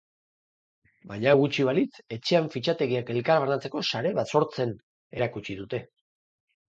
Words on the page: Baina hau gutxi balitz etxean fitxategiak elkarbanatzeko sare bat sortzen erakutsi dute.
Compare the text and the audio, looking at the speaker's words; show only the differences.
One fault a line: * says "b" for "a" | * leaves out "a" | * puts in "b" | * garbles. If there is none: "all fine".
all fine